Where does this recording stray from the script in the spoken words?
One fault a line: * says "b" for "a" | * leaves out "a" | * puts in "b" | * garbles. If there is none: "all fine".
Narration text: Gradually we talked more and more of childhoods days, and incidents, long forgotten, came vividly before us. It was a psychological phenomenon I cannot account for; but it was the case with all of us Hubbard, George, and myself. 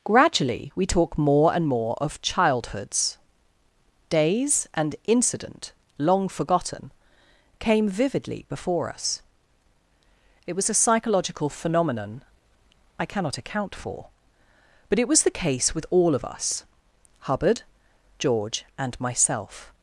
* says "talk" for "talked"
* says "incident" for "incidents"